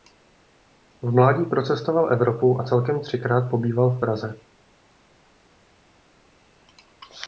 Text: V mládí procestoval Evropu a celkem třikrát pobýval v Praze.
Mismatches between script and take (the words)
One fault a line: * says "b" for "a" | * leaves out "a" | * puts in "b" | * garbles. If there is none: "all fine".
all fine